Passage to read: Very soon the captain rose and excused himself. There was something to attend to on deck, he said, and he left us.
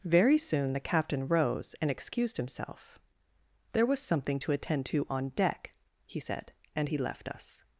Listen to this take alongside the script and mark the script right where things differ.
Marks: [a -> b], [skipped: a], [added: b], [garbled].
Very soon the captain rose and excused himself. There was something to attend to on deck, he said, and he left us.